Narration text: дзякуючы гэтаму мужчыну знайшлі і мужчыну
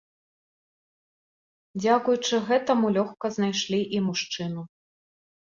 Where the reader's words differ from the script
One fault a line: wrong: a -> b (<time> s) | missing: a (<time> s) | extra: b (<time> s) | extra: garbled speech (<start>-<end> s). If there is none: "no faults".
wrong: мужчыну -> лёгка (3.0 s)